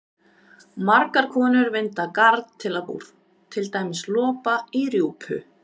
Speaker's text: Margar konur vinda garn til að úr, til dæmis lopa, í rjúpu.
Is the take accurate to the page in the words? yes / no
yes